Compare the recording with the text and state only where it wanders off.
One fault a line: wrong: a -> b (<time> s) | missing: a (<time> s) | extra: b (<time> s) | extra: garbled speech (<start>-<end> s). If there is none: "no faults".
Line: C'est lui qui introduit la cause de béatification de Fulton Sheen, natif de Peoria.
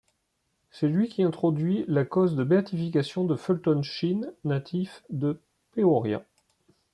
no faults